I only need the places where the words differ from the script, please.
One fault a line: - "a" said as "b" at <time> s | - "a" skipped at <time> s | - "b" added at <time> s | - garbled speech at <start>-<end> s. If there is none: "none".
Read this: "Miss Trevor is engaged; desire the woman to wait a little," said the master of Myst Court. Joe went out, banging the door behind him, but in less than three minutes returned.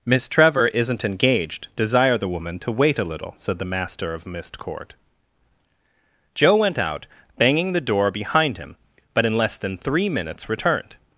- "is" said as "isn't" at 0.7 s